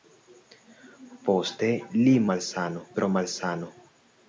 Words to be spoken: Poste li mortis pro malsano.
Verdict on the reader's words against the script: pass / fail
fail